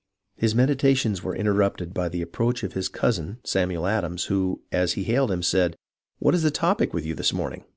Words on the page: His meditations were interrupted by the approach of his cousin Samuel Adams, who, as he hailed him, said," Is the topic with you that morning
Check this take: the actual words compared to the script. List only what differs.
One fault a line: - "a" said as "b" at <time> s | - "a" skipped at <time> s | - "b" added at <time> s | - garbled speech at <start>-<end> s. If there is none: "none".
- "What" added at 6.2 s
- "that" said as "this" at 7.1 s